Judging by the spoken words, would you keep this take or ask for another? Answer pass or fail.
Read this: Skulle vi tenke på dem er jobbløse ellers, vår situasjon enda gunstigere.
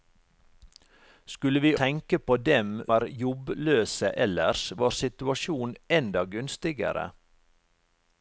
pass